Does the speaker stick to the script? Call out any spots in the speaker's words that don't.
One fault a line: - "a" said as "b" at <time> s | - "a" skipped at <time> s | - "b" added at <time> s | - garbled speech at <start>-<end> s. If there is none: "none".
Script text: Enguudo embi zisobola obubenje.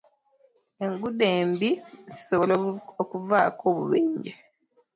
- "okuvaako" added at 3.0 s